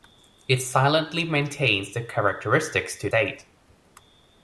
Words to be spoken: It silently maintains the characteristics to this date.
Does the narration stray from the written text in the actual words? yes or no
yes